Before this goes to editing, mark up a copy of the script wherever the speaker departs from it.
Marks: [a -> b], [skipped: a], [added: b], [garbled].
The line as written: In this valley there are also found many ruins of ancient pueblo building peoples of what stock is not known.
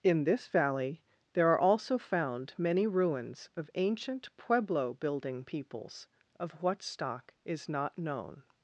In this valley there are also found many ruins of ancient pueblo building peoples of what stock is not known.